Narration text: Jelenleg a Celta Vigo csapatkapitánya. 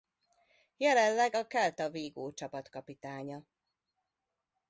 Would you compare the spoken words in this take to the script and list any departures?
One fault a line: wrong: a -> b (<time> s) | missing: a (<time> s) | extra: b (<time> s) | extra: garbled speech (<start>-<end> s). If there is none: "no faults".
no faults